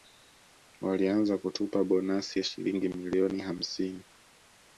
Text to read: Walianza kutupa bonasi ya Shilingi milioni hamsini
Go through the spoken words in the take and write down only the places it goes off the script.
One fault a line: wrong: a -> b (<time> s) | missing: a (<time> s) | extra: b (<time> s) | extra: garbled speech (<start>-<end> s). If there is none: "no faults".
no faults